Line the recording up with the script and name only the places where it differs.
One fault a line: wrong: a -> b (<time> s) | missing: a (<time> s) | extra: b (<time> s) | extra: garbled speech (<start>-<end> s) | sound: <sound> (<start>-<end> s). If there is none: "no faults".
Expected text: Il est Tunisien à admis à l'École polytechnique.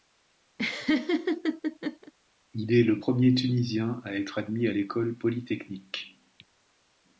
sound: laugh (0.6-2.1 s)
extra: le premier (2.8 s)
extra: être (4.1 s)